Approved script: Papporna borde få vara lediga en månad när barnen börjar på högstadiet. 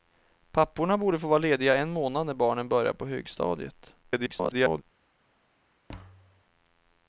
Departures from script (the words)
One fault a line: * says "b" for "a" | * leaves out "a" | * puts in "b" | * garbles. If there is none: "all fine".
* garbles